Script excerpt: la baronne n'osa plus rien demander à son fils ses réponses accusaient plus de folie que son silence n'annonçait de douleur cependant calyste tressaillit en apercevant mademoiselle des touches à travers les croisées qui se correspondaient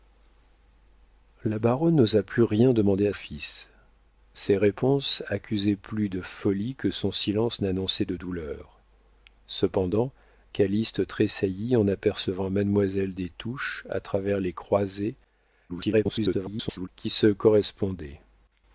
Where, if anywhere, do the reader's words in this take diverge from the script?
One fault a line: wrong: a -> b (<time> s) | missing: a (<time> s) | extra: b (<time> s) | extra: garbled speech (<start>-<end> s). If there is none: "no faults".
missing: son (3.1 s)
extra: garbled speech (15.7-16.9 s)